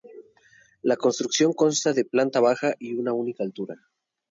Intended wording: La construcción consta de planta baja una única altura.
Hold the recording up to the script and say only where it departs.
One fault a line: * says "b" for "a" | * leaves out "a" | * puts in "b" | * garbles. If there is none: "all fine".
* puts in "y"